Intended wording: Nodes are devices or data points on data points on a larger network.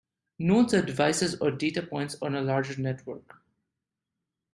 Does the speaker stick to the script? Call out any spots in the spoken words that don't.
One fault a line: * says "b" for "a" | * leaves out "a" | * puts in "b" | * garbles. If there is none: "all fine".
* leaves out "data points on"